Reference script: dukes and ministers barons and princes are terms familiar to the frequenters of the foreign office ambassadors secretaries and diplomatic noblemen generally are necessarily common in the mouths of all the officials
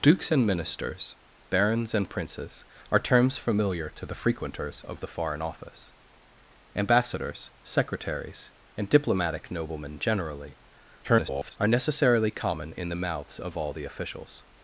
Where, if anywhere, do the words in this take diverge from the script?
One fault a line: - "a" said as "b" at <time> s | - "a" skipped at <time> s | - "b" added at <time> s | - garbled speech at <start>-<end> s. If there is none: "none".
- garbled speech at 11.0-11.6 s